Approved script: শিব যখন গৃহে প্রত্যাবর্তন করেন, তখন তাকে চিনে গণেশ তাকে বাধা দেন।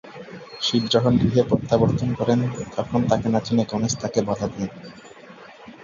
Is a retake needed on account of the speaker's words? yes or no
yes